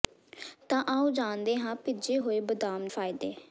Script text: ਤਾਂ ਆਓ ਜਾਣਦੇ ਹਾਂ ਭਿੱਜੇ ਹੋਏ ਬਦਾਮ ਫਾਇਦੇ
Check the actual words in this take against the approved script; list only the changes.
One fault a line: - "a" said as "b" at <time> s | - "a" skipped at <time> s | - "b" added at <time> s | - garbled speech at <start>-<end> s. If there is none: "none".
none